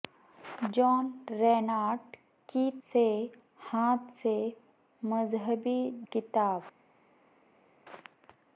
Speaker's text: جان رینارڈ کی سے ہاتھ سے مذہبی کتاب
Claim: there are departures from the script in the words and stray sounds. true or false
false